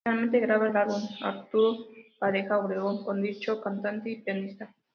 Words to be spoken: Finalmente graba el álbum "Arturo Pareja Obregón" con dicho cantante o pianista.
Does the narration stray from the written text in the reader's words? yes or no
yes